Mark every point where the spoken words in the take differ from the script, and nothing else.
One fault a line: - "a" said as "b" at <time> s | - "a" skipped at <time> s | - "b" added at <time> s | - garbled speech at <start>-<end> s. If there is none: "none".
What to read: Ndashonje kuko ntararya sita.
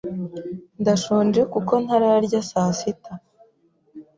- "saa" added at 2.5 s